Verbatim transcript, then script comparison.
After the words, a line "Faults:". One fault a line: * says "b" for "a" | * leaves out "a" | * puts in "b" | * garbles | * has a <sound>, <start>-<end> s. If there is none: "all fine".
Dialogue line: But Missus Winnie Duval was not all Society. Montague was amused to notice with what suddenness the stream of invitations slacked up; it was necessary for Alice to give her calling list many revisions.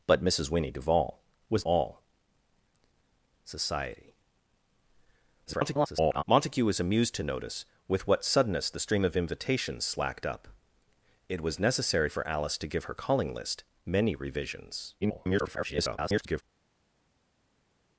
But Missus Winnie Duval was all Society. [garbled] Montague was amused to notice with what suddenness the stream of invitations slacked up; it was necessary for Alice to give her calling list many revisions. [garbled]
Faults:
* leaves out "not"
* garbles
* garbles